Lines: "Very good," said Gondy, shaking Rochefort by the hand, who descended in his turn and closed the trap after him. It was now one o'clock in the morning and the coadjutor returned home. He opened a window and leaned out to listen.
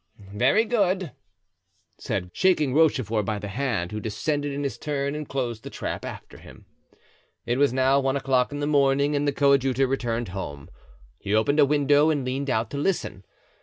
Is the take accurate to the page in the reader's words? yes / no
no